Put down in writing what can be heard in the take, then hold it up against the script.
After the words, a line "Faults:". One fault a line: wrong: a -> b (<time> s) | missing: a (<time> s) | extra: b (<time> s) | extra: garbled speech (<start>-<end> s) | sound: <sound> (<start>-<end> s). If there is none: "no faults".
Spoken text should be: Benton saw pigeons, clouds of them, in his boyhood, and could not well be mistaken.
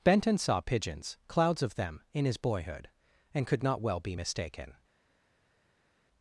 Benton saw pigeons, clouds of them, in his boyhood, and could not well be mistaken.
Faults:
no faults